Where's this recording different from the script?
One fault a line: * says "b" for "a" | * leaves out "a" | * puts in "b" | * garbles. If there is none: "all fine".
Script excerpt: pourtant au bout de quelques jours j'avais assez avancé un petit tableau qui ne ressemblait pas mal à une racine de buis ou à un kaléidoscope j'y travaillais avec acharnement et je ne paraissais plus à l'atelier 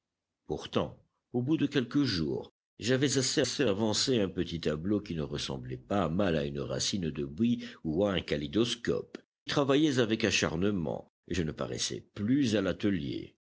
* puts in "assez"
* leaves out "j'y"